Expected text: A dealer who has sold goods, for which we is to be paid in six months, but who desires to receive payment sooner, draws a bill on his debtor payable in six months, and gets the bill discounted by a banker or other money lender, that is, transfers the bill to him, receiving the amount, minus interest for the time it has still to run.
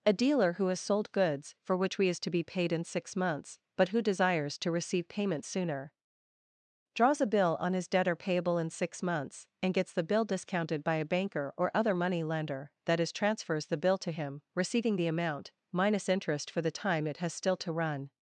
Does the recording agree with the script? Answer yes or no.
yes